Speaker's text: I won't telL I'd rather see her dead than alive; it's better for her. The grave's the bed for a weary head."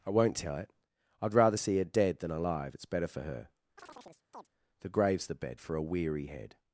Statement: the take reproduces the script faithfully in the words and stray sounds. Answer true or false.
false